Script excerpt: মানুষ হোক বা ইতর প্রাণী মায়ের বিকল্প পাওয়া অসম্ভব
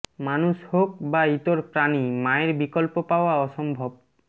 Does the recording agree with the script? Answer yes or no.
yes